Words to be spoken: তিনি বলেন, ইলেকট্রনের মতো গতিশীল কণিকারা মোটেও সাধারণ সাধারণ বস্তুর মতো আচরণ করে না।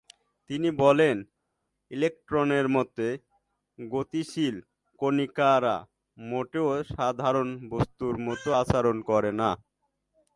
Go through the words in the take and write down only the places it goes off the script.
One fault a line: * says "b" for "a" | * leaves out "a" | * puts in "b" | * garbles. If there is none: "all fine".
* leaves out "সাধারণ"